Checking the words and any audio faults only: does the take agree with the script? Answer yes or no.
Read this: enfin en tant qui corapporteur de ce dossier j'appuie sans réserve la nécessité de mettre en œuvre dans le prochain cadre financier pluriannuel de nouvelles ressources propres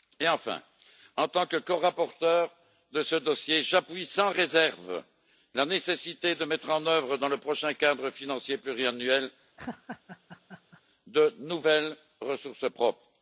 no